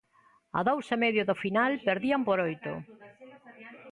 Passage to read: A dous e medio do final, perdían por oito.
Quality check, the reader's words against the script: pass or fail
pass